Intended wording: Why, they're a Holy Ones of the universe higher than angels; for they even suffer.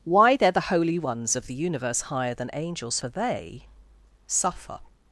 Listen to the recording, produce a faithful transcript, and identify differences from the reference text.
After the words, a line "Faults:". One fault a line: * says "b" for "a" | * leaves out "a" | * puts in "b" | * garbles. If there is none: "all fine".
Why, they're the Holy Ones of the universe higher than angels; for they suffer.
Faults:
* says "the" for "a"
* leaves out "even"